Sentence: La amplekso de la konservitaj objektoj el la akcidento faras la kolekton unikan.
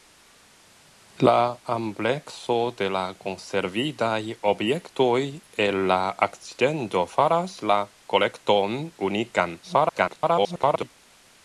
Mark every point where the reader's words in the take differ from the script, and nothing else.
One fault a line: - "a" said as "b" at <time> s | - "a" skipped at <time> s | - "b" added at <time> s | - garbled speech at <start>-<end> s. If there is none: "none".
- garbled speech at 9.6-10.9 s